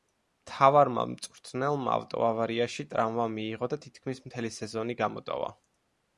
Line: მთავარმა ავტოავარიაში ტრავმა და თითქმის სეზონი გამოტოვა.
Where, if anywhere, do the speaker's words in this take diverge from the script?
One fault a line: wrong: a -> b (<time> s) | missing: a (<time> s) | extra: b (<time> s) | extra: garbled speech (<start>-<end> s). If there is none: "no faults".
extra: მწვრთნელმა (1.1 s)
extra: მიიღო (3.4 s)
extra: მთელი (4.3 s)